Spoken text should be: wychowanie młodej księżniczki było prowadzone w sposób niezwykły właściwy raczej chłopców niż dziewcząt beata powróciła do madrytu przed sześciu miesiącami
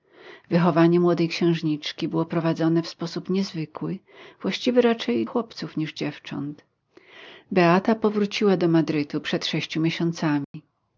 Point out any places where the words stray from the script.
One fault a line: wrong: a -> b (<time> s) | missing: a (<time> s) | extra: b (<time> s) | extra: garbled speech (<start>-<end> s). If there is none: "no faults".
no faults